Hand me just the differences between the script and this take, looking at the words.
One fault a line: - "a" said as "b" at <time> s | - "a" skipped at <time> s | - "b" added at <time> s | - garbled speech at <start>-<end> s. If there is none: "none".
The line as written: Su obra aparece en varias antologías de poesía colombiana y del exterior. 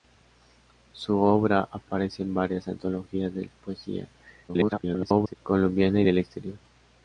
- garbled speech at 4.5-5.4 s